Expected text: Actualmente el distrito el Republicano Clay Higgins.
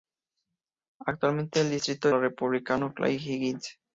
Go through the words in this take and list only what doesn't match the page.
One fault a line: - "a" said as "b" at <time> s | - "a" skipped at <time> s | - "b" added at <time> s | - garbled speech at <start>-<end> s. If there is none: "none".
none